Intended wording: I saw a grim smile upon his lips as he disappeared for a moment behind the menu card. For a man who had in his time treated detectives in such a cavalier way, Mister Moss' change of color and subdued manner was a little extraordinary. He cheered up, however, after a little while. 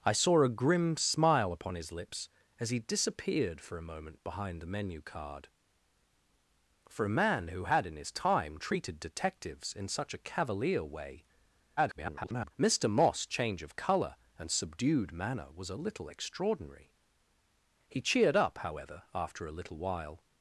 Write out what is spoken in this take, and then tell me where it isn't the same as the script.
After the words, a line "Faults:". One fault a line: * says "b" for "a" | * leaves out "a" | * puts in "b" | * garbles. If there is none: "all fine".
I saw a grim smile upon his lips as he disappeared for a moment behind the menu card. For a man who had in his time treated detectives in such a cavalier way, [garbled] Mister Moss' change of color and subdued manner was a little extraordinary. He cheered up, however, after a little while.
Faults:
* garbles